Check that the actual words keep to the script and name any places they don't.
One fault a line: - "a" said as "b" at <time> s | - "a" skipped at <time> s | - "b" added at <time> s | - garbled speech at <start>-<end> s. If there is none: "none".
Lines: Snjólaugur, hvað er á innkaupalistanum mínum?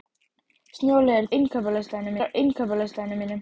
- "hvað" said as "innkaupalistanum" at 1.4 s